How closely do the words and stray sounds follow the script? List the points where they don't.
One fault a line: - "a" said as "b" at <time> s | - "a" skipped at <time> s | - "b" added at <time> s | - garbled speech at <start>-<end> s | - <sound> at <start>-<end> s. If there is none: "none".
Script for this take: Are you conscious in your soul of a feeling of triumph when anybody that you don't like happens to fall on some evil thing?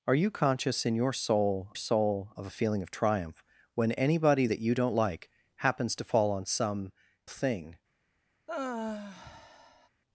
- "soul" added at 1.8 s
- "evil" skipped at 6.9 s
- sigh at 8.5-9.9 s